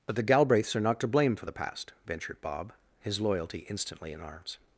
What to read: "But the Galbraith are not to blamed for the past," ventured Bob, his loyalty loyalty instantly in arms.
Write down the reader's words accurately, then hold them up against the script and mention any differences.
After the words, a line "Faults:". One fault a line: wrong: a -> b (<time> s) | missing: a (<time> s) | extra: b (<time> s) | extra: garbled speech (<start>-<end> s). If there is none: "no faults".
"But the Galbraiths are not to blame for the past," ventured Bob, his loyalty instantly in arms.
Faults:
wrong: Galbraith -> Galbraiths (0.2 s)
wrong: blamed -> blame (1.1 s)
missing: loyalty (3.6 s)